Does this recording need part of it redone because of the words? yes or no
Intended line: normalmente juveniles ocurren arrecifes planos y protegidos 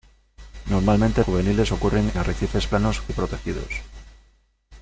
no